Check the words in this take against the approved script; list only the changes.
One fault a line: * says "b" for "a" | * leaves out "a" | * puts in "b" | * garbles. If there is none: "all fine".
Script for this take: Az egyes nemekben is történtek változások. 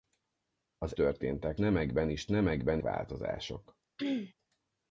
* says "történtek" for "egyes"
* says "nemekben" for "történtek"